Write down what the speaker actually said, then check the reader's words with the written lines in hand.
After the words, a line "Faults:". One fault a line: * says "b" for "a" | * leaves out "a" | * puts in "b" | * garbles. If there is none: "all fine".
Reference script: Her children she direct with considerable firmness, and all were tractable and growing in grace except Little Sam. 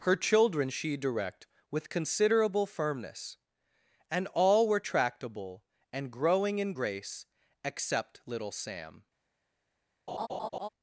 Her children she direct with considerable firmness, and all were tractable and growing in grace except Little Sam.
Faults:
all fine